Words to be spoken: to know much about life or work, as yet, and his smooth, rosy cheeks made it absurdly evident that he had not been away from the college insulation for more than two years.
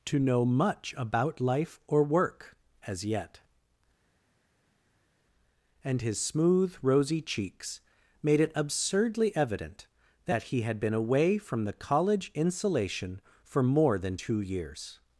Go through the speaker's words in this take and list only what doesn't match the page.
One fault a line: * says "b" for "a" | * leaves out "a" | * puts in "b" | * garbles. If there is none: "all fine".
* leaves out "not"